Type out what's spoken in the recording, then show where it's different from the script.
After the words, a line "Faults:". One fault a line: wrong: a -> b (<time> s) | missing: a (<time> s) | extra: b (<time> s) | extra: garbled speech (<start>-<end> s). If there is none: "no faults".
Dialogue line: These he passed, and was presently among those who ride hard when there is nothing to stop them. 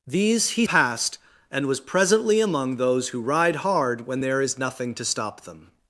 These he passed, and was presently among those who ride hard when there is nothing to stop them.
Faults:
no faults